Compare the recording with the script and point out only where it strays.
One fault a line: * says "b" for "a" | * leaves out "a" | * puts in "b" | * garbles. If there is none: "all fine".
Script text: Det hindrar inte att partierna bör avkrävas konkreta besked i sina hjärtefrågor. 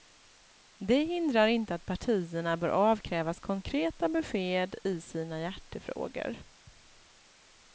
all fine